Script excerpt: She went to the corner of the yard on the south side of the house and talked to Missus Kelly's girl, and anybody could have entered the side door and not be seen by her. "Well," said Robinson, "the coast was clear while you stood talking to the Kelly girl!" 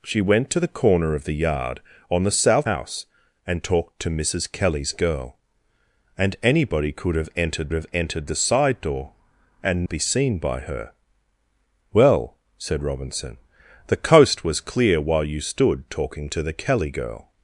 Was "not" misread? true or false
true